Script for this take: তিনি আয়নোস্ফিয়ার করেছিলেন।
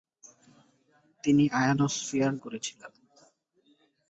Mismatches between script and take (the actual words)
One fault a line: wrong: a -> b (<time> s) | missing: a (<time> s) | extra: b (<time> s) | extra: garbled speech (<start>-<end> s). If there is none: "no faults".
no faults